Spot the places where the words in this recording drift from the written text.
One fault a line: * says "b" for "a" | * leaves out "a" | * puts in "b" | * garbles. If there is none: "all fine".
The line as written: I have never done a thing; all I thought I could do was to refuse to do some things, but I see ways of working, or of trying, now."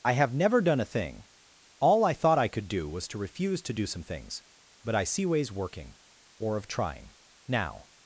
* leaves out "of"